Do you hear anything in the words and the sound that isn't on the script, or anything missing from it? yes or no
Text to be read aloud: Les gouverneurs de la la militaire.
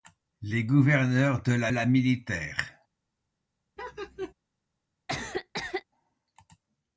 yes